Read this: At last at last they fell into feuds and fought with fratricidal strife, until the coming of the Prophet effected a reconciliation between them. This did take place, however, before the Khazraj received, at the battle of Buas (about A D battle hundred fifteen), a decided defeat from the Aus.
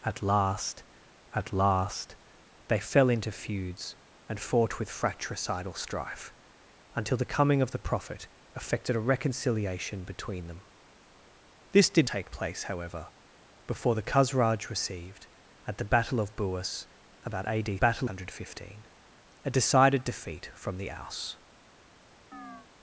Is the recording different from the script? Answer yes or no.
no